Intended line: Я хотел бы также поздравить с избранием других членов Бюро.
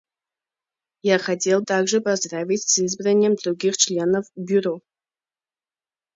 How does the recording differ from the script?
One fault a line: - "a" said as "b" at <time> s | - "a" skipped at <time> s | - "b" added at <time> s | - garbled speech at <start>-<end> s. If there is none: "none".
- "бы" skipped at 1.6 s